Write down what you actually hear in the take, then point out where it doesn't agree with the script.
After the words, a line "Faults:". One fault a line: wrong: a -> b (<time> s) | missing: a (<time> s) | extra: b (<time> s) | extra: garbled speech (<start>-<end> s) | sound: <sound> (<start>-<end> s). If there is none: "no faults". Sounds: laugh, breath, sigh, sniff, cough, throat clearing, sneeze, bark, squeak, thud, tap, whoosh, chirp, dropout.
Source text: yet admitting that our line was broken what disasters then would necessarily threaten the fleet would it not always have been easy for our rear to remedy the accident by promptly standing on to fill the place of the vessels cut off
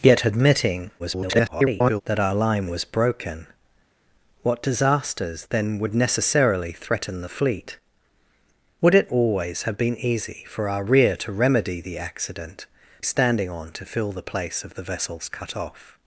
yet admitting [garbled] that our line was broken what disasters then would necessarily threaten the fleet would it always have been easy for our rear to remedy the accident standing on to fill the place of the vessels cut off
Faults:
extra: garbled speech (1.0-2.0 s)
missing: not (9.1 s)
missing: by promptly (12.7 s)